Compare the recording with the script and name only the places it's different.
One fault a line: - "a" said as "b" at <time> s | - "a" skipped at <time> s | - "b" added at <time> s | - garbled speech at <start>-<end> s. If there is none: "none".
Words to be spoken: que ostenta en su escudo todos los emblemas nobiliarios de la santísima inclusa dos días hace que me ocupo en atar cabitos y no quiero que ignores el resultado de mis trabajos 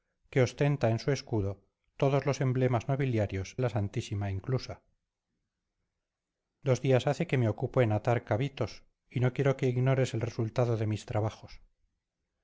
- "de" skipped at 3.6 s